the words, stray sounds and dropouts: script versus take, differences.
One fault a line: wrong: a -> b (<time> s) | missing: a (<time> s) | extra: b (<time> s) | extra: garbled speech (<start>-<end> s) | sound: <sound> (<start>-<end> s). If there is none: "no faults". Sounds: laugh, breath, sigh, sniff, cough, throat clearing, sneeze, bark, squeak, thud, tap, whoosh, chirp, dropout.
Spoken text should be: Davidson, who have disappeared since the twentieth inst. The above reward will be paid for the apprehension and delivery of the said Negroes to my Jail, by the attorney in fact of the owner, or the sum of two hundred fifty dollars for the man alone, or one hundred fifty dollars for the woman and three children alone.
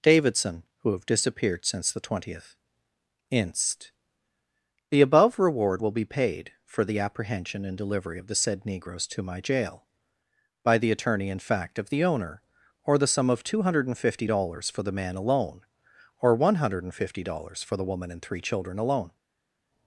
no faults